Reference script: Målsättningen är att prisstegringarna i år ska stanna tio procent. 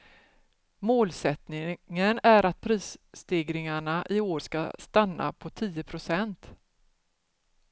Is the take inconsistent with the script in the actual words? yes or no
yes